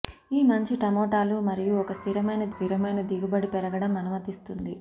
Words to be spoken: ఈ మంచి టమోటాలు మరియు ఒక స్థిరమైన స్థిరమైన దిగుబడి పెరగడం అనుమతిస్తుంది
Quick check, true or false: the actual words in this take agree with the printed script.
true